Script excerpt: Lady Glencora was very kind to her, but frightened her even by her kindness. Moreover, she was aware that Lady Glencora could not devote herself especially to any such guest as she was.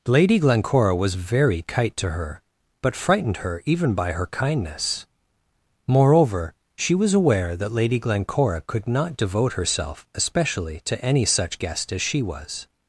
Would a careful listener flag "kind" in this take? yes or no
yes